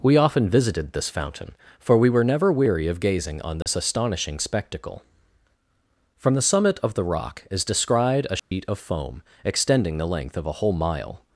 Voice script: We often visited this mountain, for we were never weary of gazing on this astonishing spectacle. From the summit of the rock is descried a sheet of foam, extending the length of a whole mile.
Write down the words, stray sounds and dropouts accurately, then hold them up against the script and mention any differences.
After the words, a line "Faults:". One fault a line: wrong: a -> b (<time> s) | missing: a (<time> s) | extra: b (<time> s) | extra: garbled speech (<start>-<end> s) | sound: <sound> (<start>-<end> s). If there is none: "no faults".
We often visited this fountain, for we were never weary of gazing on this astonishing spectacle. From the summit of the rock is descried a sheet of foam, extending the length of a whole mile.
Faults:
wrong: mountain -> fountain (1.1 s)
sound: dropout (3.6-3.7 s)
sound: dropout (8.4-8.5 s)